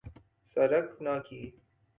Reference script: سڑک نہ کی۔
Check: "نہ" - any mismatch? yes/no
no